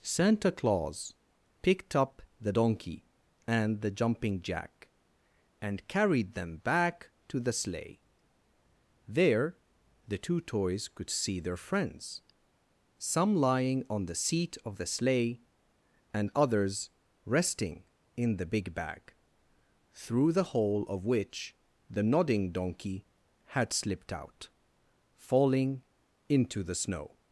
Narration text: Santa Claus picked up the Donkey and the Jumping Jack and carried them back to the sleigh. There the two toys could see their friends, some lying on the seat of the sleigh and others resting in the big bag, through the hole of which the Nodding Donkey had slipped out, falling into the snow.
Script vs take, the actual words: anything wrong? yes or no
no